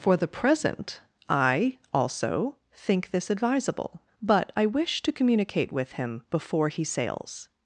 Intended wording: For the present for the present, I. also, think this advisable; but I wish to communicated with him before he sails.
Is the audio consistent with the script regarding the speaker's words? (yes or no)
no